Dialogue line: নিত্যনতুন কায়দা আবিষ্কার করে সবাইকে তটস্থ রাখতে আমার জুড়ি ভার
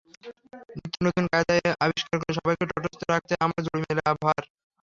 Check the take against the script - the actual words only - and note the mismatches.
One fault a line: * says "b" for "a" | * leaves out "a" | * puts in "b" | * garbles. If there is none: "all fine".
* puts in "মেলা"